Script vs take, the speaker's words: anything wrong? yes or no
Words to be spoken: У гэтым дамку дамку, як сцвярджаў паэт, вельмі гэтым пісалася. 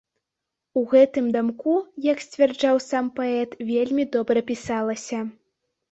yes